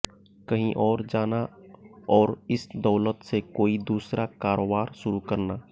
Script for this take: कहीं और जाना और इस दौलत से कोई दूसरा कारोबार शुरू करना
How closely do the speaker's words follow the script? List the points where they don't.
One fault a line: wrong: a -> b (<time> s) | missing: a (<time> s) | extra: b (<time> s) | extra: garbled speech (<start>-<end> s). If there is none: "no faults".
no faults